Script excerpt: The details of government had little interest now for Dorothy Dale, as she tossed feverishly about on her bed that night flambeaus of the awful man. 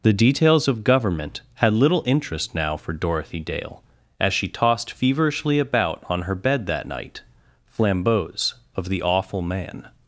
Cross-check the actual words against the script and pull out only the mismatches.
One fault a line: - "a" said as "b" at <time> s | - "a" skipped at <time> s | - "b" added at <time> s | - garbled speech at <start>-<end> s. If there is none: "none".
none